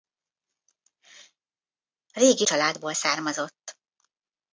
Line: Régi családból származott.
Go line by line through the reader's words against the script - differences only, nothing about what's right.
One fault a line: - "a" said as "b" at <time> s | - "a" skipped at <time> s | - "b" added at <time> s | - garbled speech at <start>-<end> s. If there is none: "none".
none